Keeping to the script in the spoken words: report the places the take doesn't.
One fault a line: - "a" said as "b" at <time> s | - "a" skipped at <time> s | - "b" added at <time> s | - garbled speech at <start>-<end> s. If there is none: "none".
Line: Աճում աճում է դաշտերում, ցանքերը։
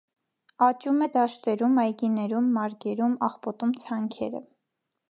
- "աճում" skipped at 1.0 s
- "այգիներում մարգերում աղբոտում" added at 1.9 s